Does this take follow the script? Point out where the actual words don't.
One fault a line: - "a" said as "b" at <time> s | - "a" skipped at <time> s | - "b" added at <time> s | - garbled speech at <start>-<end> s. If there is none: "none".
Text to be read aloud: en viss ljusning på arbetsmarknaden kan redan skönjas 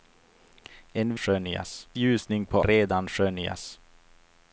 - "viss" said as "skönjas" at 1.2 s
- "arbetsmarknaden kan" skipped at 2.6 s